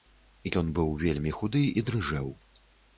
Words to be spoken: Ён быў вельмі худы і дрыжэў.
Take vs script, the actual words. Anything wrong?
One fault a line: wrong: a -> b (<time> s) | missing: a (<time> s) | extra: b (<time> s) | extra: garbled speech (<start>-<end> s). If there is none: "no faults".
no faults